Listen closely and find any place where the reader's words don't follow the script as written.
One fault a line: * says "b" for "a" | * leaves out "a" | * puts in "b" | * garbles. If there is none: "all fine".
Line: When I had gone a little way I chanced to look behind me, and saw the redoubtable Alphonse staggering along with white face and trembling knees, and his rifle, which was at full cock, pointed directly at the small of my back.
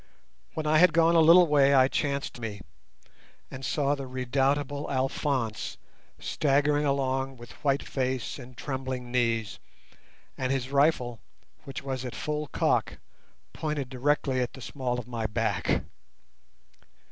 * leaves out "look behind"